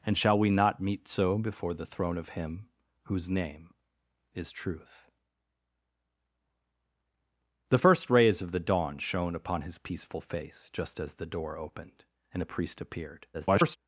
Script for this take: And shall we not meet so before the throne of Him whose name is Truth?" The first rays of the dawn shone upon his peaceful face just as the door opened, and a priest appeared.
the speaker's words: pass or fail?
fail